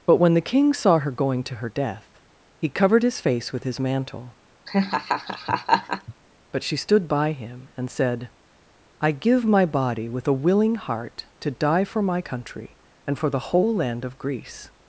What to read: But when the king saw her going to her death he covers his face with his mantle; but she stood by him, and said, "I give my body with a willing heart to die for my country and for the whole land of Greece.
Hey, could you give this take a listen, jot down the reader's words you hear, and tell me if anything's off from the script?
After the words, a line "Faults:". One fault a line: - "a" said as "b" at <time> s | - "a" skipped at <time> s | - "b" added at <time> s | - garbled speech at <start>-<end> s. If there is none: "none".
But when the king saw her going to her death he covered his face with his mantle; but she stood by him, and said, "I give my body with a willing heart to die for my country and for the whole land of Greece.
Faults:
- "covers" said as "covered" at 2.7 s